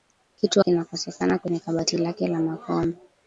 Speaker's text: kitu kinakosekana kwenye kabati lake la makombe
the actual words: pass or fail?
pass